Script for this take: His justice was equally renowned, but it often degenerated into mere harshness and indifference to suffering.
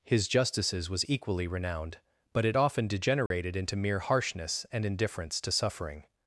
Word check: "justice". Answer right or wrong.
wrong